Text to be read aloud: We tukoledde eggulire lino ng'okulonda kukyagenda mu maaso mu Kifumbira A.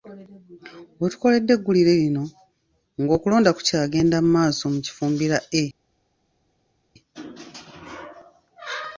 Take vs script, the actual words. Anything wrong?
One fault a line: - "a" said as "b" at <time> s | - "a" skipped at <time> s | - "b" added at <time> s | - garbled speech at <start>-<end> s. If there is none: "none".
none